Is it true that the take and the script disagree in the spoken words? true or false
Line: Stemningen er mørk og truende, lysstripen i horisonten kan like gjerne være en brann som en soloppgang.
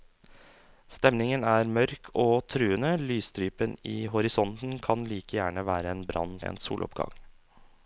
true